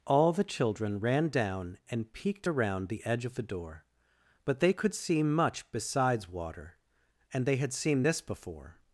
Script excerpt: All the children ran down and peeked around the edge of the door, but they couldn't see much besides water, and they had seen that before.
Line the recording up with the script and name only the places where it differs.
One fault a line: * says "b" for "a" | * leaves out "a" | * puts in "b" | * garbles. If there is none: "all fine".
* says "could" for "couldn't"
* says "this" for "that"